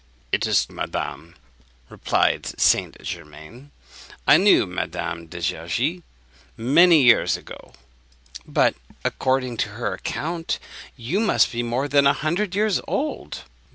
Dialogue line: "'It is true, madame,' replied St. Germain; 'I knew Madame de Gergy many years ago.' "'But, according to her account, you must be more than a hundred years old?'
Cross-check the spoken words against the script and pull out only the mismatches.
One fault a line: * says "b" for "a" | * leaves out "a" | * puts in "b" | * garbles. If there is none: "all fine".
* leaves out "true"